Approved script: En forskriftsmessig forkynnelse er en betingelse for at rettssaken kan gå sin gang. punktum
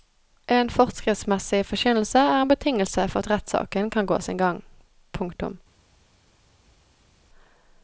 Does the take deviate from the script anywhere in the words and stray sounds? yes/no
no